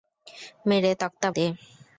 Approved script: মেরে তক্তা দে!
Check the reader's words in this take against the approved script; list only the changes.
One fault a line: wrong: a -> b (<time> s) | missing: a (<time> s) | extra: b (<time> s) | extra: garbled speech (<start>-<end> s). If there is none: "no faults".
no faults